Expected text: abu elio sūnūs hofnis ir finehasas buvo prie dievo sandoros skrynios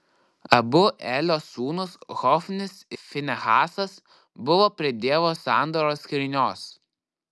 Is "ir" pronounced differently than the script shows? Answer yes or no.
yes